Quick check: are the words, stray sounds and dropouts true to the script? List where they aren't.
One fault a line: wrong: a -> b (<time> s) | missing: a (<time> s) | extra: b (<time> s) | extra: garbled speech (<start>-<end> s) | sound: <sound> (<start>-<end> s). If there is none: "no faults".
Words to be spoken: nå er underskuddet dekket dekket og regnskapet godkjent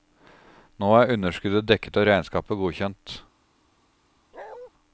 missing: dekket (2.0 s)
sound: bark (4.3-4.7 s)